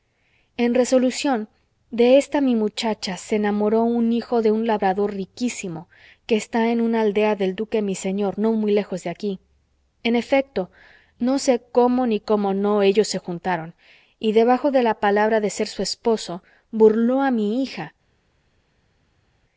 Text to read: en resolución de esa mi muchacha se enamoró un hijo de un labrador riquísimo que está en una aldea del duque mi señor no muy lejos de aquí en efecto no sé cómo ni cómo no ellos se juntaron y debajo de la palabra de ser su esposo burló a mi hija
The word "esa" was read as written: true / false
false